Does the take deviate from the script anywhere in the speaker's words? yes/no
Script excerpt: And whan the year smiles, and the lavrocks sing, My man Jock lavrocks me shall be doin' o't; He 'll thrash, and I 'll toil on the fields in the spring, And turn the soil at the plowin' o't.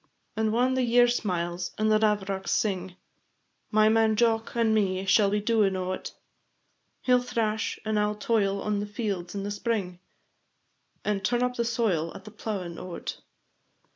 yes